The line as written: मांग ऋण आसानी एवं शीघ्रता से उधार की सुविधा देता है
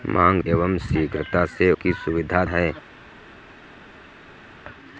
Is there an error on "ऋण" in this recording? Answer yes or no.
yes